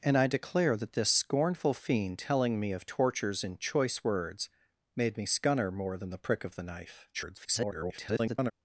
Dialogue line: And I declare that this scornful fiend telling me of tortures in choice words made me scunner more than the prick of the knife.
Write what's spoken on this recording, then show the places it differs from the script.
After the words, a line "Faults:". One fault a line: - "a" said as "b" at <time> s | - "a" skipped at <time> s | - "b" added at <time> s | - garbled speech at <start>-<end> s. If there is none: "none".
And I declare that this scornful fiend telling me of tortures in choice words made me scunner more than the prick of the knife. [garbled]
Faults:
- garbled speech at 7.1-8.5 s